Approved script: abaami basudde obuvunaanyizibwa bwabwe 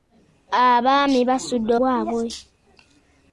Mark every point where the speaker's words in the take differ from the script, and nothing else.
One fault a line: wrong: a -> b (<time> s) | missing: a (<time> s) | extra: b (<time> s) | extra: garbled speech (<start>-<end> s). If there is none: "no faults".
missing: obuvunaanyizibwa (1.7 s)